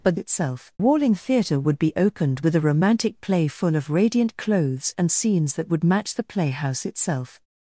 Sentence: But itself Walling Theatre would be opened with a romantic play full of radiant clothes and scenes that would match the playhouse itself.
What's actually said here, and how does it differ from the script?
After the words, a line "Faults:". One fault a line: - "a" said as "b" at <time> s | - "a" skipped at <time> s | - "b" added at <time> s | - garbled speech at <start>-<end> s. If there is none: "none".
But itself Walling Theatre would be opened with a romantic play full of radiant clothes and scenes that would match the playhouse itself.
Faults:
none